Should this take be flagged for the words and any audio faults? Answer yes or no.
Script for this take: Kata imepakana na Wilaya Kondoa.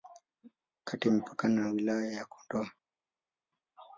yes